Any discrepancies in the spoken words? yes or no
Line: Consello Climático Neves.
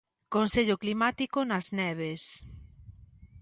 yes